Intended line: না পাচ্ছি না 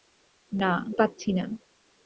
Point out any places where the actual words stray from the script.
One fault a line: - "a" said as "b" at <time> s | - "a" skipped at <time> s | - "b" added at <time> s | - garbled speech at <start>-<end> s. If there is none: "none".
none